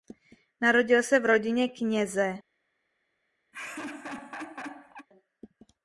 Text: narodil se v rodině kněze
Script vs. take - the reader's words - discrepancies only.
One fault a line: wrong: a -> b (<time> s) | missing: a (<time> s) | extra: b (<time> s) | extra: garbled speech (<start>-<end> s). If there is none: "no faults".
no faults